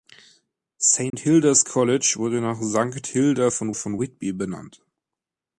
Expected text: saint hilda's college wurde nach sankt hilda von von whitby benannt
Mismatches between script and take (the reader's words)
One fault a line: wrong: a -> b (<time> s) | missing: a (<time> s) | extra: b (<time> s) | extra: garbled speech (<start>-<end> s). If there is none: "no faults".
no faults